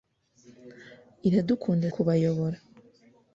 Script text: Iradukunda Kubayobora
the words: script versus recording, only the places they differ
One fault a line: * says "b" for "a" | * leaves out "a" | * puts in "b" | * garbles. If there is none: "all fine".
all fine